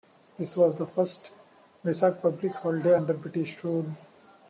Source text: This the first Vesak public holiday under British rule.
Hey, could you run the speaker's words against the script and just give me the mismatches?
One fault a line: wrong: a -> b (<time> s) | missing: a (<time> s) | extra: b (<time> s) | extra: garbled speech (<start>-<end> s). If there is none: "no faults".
extra: was (0.6 s)